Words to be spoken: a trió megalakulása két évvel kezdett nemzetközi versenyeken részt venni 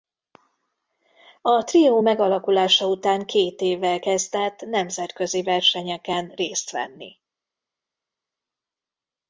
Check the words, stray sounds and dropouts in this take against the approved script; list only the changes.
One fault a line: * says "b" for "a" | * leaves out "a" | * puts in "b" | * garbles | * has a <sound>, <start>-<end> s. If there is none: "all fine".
* puts in "után"